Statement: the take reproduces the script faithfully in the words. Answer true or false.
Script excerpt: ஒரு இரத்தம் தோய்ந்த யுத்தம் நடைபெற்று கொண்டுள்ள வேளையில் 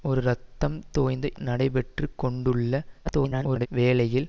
false